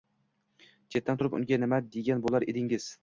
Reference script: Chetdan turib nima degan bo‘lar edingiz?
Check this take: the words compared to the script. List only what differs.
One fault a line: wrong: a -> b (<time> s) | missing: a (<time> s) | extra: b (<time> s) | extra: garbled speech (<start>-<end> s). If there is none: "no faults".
extra: unga (1.4 s)